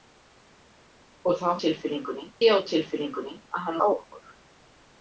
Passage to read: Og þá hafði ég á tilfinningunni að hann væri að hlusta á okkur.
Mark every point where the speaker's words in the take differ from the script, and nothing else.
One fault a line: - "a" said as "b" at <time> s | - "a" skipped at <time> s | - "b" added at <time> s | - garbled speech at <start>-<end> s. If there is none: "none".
- "hafði" said as "tilfinningunni" at 1.6 s
- "væri að hlusta" skipped at 3.8 s